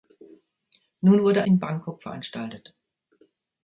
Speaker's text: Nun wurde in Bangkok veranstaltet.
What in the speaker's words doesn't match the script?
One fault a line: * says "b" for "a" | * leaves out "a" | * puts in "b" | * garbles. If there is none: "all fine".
all fine